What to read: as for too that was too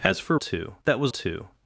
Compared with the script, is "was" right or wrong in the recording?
right